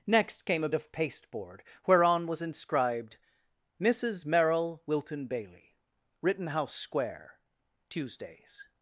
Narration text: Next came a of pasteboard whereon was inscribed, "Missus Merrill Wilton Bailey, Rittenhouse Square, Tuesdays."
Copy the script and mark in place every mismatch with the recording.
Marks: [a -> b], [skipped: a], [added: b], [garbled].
Next came a of pasteboard whereon was inscribed, "Missus Merrill Wilton Bailey, Rittenhouse Square, Tuesdays."